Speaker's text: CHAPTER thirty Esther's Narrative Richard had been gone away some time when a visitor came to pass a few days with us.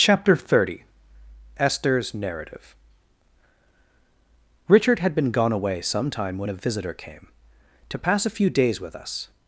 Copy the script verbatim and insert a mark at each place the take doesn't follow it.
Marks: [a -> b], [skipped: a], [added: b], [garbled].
CHAPTER thirty Esther's Narrative Richard had been gone away some time when a visitor came to pass a few days with us.